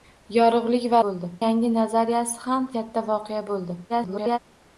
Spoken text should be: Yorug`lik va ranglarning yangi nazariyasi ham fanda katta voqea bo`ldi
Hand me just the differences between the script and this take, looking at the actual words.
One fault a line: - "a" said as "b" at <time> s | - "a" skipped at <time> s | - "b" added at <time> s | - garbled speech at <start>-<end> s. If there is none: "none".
- "ranglarning" said as "bo`ldi" at 1.1 s
- "fanda" skipped at 2.7 s
- garbled speech at 3.9-4.4 s